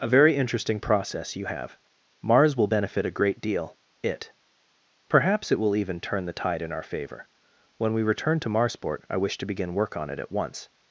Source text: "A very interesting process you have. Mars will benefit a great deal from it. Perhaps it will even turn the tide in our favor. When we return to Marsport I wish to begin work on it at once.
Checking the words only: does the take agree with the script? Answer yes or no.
no